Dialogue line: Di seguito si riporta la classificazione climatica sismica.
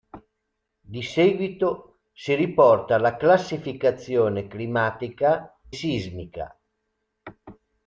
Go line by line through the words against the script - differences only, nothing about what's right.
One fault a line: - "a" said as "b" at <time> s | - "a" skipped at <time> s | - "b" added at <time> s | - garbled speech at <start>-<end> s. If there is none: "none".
none